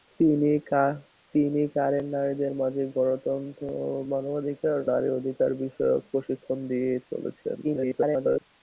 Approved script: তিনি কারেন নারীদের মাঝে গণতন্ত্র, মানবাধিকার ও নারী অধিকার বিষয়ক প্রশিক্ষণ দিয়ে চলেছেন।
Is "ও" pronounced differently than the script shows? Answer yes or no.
yes